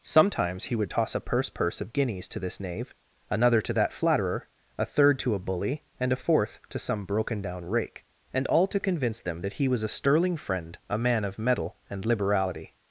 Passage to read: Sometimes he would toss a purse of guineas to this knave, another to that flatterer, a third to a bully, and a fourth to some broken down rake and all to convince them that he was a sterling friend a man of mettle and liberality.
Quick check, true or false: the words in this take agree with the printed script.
false